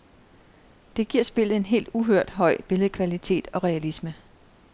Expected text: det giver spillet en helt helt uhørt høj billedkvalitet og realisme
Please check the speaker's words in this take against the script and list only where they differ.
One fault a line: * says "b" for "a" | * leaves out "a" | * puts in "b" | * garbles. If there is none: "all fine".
* leaves out "helt"